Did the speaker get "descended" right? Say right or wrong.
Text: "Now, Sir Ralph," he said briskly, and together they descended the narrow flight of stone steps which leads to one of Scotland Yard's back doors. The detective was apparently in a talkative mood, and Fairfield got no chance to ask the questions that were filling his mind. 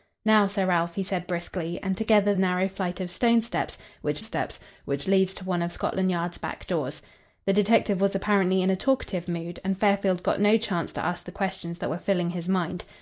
wrong